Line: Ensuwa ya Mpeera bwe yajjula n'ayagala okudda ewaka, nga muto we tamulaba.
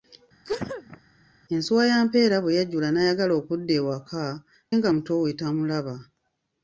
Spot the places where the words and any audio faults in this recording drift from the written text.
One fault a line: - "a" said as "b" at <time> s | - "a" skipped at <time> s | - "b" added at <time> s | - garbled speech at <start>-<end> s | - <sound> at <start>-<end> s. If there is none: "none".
- sneeze at 0.4-1.0 s